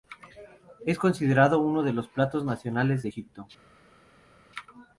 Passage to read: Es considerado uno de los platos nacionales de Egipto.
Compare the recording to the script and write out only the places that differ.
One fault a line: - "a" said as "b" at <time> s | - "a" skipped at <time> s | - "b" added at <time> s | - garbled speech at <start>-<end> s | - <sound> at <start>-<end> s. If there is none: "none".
none